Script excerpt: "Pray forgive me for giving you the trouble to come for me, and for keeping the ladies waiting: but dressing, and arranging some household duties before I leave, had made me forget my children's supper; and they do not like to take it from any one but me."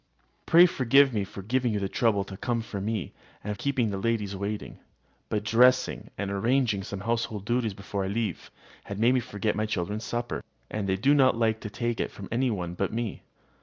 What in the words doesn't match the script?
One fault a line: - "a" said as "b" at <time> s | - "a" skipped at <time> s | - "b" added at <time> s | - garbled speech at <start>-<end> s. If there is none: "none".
- "for" skipped at 3.5 s